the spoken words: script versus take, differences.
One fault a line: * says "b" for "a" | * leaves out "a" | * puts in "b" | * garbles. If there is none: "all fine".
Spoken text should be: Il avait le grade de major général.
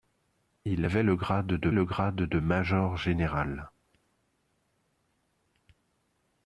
* puts in "le grade de"